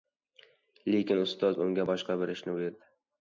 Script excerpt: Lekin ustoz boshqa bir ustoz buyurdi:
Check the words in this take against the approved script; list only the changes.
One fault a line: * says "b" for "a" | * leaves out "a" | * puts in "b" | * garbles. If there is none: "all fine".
* puts in "unga"
* says "ishni" for "ustoz"